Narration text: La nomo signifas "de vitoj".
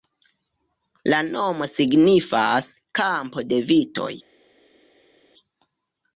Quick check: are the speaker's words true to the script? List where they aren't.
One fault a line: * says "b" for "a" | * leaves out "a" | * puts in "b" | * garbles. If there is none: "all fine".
* puts in "kampo"